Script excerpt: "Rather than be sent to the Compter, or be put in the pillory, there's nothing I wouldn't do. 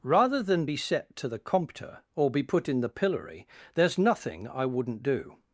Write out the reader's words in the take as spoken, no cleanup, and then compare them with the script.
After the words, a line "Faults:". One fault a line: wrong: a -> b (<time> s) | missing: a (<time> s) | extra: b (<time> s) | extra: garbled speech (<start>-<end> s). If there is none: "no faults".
"Rather than be set to the Compter, or be put in the pillory, there's nothing I wouldn't do.
Faults:
wrong: sent -> set (0.8 s)